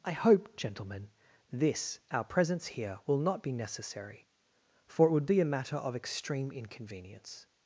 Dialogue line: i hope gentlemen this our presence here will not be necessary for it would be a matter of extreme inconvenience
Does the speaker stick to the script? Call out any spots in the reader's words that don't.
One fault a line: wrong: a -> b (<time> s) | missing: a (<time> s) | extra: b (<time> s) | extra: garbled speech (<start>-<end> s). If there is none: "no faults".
no faults